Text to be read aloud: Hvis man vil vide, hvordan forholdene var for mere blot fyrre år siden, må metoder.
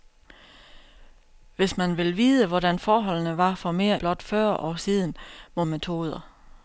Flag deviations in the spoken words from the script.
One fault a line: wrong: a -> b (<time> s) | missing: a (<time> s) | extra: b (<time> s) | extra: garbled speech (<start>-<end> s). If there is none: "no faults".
no faults